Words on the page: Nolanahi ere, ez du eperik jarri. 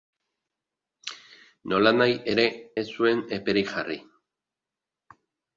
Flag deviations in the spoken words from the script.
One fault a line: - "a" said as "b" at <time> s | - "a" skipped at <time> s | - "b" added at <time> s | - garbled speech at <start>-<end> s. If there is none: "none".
- "du" said as "zuen" at 3.0 s